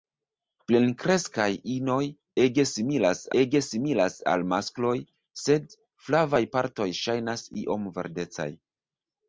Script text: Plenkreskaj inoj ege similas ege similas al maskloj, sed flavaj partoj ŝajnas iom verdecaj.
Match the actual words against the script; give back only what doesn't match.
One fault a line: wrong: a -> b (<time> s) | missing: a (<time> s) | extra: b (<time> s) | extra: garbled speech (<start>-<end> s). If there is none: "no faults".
no faults